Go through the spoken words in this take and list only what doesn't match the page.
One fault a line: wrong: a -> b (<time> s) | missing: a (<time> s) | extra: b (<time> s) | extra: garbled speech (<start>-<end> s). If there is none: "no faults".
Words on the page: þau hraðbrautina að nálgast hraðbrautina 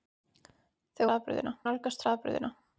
no faults